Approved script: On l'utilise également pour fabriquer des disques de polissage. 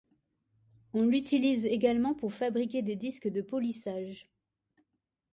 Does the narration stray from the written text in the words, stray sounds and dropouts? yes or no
no